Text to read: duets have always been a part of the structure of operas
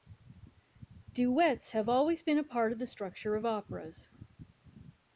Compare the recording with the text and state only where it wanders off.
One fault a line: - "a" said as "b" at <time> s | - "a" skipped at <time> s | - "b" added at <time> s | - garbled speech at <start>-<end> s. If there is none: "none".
none